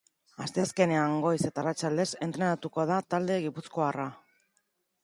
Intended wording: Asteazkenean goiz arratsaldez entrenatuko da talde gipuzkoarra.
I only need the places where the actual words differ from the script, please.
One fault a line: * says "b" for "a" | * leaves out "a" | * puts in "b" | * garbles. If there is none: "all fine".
* puts in "eta"